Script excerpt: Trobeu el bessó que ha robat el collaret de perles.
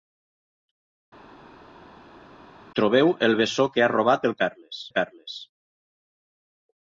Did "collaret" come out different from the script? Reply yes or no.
yes